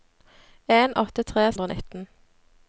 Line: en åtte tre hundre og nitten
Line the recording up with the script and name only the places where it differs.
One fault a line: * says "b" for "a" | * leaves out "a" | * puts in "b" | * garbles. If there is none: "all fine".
all fine